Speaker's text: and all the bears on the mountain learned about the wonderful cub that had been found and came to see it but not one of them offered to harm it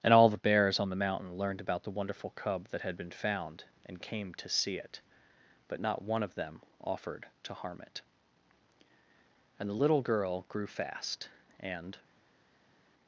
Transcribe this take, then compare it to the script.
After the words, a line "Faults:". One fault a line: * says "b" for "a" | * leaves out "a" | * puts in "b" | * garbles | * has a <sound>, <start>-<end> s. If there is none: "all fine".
and all the bears on the mountain learned about the wonderful cub that had been found and came to see it but not one of them offered to harm it and the little girl grew fast and
Faults:
* puts in "and the little girl grew fast and"